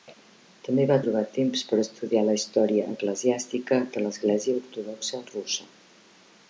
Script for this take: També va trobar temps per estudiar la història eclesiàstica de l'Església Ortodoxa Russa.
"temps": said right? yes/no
yes